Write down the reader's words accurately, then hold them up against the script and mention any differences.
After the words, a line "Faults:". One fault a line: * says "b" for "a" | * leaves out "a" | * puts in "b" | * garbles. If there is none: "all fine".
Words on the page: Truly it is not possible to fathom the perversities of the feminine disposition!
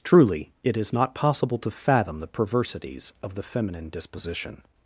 Truly it is not possible to fathom the perversities of the feminine disposition!
Faults:
all fine